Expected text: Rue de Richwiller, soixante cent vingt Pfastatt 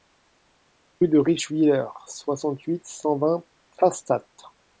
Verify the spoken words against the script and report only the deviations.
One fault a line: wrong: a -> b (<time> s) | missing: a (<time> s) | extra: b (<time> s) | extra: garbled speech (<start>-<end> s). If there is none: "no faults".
extra: huit (2.6 s)